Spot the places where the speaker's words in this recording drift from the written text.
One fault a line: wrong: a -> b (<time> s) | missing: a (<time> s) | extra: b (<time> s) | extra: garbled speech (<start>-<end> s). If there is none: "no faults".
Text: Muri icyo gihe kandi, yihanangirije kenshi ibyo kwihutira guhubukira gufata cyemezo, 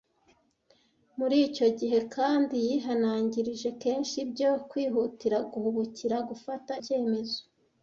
no faults